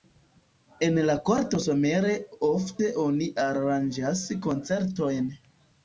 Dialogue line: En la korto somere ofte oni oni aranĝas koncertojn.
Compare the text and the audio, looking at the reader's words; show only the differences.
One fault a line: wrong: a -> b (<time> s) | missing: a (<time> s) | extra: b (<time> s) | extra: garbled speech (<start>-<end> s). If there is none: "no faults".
missing: oni (3.3 s)